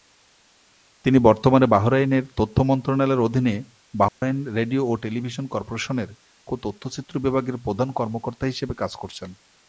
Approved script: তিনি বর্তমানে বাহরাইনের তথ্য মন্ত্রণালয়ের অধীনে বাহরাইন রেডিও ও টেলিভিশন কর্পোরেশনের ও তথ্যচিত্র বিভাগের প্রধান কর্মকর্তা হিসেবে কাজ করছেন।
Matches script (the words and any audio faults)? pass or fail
fail